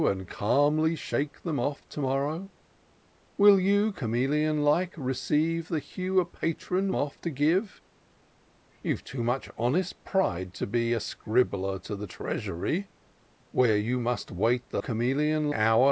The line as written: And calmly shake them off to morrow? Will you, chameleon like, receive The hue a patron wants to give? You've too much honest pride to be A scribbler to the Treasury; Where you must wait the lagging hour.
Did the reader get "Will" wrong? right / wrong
right